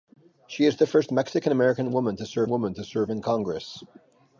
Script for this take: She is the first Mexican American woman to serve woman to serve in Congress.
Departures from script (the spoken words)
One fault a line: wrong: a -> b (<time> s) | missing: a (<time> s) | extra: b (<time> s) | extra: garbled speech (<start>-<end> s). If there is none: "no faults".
no faults